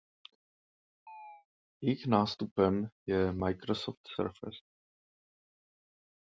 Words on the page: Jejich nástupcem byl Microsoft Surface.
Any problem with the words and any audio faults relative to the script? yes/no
yes